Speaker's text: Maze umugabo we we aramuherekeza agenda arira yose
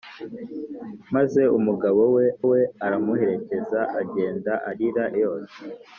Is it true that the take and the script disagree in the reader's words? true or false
false